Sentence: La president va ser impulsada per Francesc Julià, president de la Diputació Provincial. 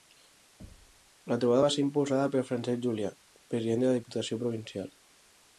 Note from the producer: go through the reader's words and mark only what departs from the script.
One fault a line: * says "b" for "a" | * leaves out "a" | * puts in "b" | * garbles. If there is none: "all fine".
* says "trobada" for "president"